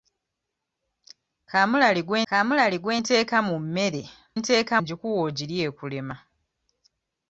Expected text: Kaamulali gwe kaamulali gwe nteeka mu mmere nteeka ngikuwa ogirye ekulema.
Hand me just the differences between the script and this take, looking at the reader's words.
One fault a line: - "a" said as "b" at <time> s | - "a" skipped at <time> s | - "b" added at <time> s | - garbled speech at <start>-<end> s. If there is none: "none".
none